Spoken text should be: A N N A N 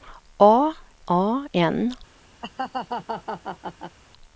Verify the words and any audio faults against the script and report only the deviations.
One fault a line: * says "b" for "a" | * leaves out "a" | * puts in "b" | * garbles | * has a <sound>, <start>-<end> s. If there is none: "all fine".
* leaves out "N N"
* has a laugh, 2.4-4.0 s